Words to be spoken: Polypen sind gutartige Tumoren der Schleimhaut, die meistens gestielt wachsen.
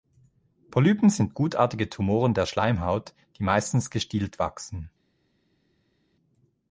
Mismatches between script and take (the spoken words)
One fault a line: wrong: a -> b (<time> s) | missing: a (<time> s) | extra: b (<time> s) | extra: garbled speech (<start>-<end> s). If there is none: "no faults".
no faults